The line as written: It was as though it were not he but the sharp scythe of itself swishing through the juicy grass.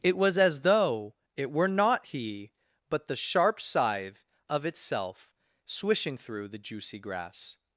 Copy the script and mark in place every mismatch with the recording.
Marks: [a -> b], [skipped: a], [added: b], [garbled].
It was as though it were not he but the sharp scythe of itself swishing through the juicy grass.